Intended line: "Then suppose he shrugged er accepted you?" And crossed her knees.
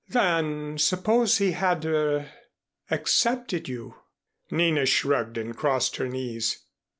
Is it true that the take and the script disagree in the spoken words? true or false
true